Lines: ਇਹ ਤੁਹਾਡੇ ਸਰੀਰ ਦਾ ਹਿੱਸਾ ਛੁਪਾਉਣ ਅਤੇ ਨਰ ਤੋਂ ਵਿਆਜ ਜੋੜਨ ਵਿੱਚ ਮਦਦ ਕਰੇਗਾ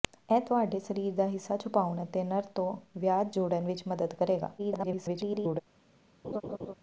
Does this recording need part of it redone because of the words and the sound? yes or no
yes